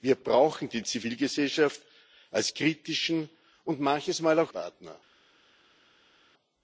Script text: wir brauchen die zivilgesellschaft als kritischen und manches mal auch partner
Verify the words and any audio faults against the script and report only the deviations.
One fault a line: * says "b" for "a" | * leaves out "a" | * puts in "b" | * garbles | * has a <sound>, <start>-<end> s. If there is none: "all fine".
all fine